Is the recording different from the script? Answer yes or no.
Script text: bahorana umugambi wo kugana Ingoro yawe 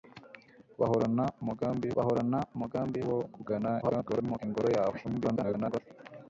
yes